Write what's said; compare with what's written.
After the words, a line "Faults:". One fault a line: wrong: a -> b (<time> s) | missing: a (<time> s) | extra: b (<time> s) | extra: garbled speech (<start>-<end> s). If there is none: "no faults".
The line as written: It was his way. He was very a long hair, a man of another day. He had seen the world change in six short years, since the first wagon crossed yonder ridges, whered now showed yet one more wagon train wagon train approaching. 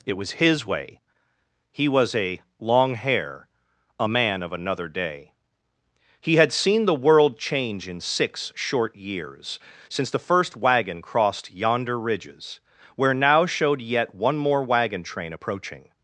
It was his way. He was a long hair, a man of another day. He had seen the world change in six short years, since the first wagon crossed yonder ridges, where now showed yet one more wagon train approaching.
Faults:
missing: very (2.1 s)
wrong: whered -> where (13.0 s)
missing: wagon train (15.3 s)